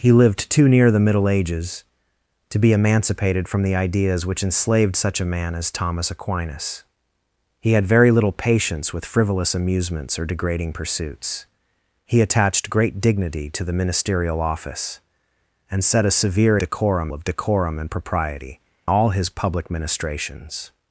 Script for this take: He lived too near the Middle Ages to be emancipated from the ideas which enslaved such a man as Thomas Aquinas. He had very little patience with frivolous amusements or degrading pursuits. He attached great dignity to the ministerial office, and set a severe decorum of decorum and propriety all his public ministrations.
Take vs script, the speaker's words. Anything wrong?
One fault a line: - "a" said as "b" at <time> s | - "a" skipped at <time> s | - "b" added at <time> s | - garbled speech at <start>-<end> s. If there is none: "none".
none